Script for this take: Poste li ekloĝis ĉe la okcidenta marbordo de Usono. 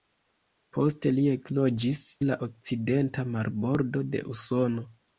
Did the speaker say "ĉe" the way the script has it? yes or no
no